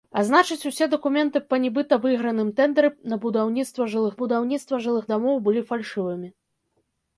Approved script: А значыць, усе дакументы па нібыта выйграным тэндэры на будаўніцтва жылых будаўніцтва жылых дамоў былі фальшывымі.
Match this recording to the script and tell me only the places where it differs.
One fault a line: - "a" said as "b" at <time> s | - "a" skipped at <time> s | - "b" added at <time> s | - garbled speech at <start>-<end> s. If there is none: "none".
none